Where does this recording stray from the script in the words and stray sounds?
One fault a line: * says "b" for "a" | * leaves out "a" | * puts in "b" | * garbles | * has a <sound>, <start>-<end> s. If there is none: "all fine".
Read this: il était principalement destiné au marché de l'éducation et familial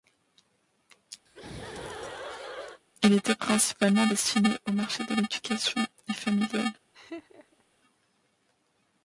* has a laugh, 1.3-2.8 s
* has a laugh, 6.9-7.6 s